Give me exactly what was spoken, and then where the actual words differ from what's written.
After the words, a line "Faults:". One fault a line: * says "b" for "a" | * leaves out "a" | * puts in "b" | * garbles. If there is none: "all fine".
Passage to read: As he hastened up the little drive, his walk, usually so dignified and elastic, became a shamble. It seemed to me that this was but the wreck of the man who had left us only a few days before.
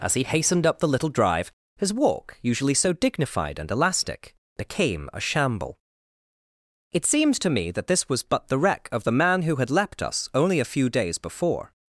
As he hastened up the little drive, his walk, usually so dignified and elastic, became a shamble. It seemed to me that this was but the wreck of the man who had leapt us only a few days before.
Faults:
* says "leapt" for "left"